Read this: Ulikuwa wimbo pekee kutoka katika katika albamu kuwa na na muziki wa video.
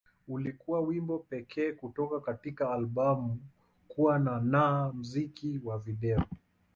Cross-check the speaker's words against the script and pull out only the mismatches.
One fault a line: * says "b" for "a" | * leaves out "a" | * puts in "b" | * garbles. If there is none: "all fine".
* leaves out "katika"